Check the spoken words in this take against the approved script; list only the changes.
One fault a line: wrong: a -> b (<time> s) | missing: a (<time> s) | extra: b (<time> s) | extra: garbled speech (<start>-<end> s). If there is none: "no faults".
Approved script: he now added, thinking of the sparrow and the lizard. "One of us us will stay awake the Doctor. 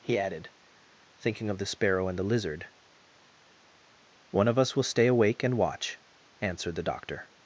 missing: now (0.2 s)
missing: us (4.8 s)
extra: and watch answered (5.4 s)